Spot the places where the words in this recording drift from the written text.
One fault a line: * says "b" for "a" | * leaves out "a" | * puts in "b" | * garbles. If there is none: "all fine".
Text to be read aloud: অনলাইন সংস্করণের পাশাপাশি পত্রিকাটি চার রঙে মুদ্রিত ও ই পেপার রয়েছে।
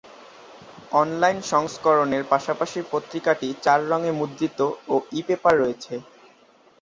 all fine